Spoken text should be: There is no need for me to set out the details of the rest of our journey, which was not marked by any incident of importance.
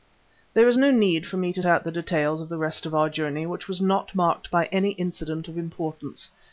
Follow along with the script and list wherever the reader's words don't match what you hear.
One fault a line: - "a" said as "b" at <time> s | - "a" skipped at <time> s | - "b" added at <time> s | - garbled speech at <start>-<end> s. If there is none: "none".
- "set" skipped at 1.6 s